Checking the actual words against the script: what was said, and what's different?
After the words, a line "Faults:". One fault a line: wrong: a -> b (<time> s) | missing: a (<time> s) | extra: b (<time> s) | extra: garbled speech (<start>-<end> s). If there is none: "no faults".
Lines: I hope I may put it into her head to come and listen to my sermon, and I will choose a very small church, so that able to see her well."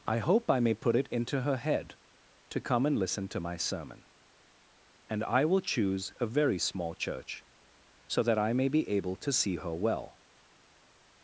I hope I may put it into her head to come and listen to my sermon, and I will choose a very small church, so that I may be able to see her well."
Faults:
extra: I may be (8.4 s)